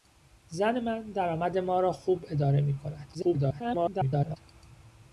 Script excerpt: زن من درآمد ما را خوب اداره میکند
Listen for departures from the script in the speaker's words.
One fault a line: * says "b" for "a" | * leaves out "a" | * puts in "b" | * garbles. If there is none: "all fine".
* garbles